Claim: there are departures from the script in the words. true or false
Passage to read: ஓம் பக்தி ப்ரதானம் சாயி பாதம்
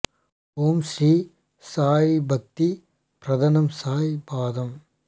true